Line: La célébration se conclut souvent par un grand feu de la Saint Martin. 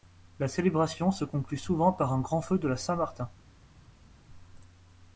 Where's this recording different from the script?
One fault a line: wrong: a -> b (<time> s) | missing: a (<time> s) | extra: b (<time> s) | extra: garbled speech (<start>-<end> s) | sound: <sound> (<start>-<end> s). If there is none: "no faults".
no faults